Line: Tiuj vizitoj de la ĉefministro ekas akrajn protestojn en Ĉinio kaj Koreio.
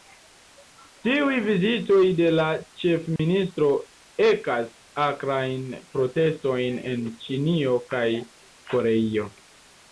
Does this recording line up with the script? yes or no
yes